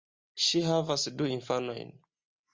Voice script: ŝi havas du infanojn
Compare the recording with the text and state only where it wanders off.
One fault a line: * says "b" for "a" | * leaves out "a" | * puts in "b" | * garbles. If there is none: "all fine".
all fine